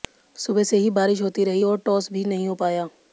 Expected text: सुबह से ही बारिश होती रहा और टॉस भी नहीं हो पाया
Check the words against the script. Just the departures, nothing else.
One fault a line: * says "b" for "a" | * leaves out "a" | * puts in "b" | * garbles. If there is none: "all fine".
* says "रही" for "रहा"